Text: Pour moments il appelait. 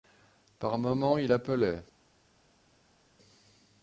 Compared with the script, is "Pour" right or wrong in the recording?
wrong